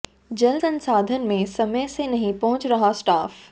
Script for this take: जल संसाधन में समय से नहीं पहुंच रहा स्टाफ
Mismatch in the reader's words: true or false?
false